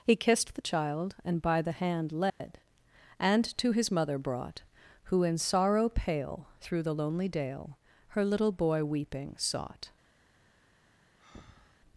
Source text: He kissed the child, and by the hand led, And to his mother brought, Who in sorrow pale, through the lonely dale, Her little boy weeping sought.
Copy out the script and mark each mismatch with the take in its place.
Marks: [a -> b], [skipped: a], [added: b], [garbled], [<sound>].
He kissed the child, and by the hand led, [dropout] And to his mother brought, Who in sorrow pale, through the lonely dale, Her little boy weeping sought. [breath]